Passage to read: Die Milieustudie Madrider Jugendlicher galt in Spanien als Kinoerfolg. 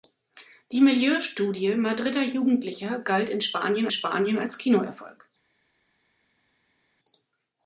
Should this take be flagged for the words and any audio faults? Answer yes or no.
yes